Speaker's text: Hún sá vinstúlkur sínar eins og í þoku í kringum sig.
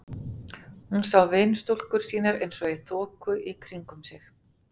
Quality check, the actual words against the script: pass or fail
pass